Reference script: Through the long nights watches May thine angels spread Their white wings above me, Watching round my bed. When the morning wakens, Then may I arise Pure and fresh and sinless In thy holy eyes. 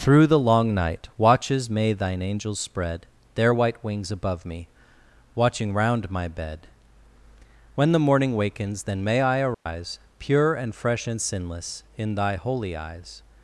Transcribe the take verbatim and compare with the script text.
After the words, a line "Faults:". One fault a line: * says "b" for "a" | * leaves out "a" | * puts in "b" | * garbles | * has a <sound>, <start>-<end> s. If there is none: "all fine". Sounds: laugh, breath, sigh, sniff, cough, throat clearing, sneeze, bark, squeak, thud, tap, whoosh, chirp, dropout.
Through the long night watches May thine angels spread Their white wings above me, Watching round my bed. When the morning wakens, Then may I arise Pure and fresh and sinless In thy holy eyes.
Faults:
* says "night" for "nights"
* has a dropout, 9.5-9.7 s